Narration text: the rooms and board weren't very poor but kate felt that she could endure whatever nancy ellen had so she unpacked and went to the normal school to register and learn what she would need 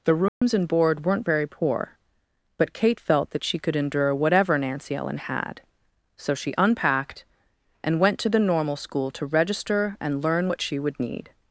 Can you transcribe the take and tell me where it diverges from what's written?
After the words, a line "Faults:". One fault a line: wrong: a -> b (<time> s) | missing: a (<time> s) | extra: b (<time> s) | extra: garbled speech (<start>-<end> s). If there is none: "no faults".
the rooms and board weren't very poor but kate felt that she could endure whatever nancy ellen had so she unpacked and went to the normal school to register and learn what she would need
Faults:
no faults